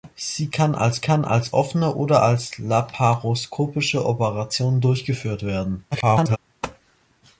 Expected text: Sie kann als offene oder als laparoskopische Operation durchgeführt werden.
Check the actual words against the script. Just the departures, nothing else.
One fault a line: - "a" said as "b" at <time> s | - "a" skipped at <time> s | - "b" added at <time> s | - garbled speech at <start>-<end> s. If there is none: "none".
- "kann als" added at 1.0 s
- garbled speech at 5.9-6.4 s